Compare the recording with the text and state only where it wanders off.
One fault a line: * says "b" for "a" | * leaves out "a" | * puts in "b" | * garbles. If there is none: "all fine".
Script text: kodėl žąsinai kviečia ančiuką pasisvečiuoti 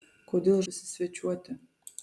* leaves out "žąsinai kviečia ančiuką"